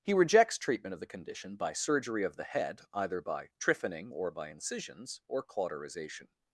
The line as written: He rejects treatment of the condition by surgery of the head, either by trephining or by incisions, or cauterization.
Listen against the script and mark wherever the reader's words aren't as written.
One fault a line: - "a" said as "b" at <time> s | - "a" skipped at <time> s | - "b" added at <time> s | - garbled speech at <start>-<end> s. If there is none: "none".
none